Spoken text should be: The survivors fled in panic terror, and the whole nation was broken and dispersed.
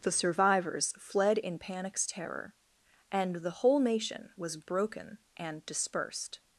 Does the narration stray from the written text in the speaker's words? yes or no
yes